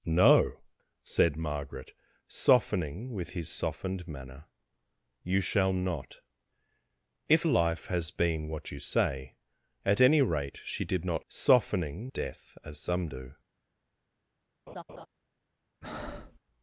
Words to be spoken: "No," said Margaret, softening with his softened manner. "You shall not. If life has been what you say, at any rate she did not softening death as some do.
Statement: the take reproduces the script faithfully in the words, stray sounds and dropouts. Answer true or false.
false